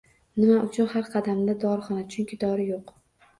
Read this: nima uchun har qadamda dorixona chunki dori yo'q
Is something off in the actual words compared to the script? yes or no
no